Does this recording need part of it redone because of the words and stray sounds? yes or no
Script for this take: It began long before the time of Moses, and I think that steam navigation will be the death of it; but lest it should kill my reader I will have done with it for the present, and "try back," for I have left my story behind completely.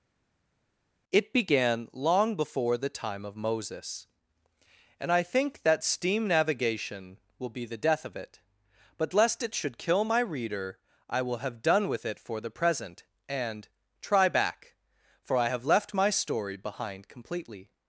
no